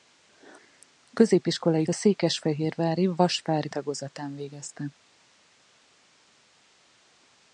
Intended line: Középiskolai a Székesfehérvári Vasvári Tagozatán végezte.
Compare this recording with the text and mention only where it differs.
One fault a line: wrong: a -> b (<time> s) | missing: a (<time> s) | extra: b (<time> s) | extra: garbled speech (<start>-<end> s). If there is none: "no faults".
no faults